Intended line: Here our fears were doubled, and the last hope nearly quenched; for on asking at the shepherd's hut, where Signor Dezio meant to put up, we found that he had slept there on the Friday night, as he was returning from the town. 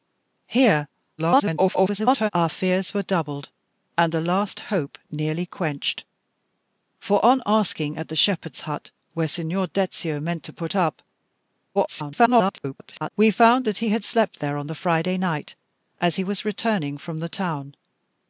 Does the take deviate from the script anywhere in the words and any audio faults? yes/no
yes